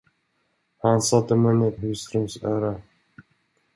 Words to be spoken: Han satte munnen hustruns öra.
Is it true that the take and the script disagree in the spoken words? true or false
false